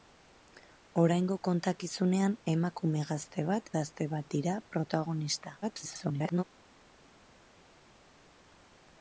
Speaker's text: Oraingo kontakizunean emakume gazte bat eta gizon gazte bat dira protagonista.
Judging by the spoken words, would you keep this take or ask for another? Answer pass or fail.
fail